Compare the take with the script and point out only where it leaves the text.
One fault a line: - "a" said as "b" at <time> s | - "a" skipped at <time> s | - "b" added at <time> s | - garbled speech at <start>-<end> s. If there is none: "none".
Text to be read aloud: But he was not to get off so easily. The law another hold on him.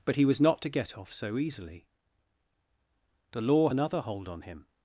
none